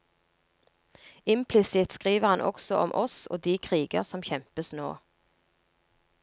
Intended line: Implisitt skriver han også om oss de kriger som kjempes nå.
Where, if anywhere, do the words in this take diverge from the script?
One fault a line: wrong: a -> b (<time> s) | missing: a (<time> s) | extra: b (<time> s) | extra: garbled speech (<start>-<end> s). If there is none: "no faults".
extra: og (3.3 s)